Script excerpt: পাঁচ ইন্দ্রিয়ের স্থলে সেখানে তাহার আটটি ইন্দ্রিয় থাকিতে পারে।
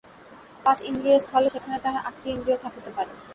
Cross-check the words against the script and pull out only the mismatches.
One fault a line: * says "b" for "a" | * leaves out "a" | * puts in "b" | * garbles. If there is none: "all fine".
all fine